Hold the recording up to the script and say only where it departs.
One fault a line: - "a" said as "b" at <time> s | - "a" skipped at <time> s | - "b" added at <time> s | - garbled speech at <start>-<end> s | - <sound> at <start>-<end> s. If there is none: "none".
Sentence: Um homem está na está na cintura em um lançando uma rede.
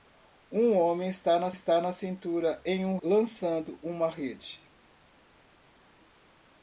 none